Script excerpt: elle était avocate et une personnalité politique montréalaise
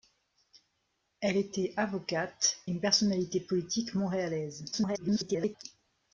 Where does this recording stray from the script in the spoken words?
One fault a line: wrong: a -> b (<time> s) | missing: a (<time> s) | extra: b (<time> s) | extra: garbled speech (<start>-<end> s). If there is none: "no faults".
missing: et (2.6 s)
extra: garbled speech (4.7-5.6 s)